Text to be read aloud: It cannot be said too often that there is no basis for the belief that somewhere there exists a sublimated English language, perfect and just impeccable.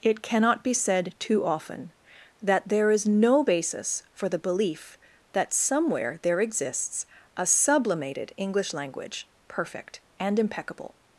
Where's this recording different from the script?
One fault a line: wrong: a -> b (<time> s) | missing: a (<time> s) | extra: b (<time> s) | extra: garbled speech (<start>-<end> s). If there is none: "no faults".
missing: just (10.4 s)